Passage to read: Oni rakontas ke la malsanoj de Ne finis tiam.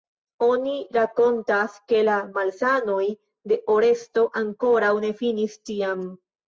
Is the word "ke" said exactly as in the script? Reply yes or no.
yes